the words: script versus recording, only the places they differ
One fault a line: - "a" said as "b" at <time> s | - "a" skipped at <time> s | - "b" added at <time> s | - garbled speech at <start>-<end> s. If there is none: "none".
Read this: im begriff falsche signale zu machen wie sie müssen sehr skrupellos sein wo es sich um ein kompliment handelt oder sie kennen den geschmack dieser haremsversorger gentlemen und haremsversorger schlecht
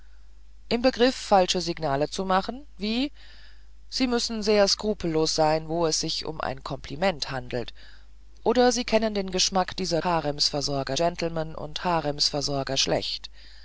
none